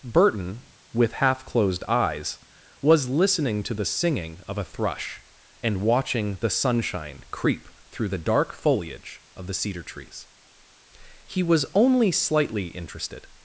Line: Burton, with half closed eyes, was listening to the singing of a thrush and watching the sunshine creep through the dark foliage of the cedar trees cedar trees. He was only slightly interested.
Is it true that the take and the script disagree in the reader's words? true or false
true